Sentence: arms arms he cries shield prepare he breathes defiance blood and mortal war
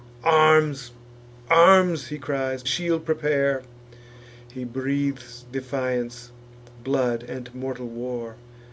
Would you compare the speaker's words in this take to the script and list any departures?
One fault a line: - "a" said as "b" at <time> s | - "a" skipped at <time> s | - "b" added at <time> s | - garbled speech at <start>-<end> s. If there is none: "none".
none